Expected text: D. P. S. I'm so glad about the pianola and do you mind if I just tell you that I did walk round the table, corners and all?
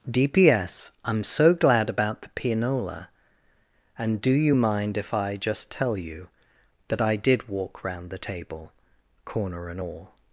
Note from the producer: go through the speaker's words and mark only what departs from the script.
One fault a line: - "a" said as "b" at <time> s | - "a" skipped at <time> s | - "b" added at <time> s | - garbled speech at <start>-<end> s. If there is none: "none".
- "corners" said as "corner" at 9.2 s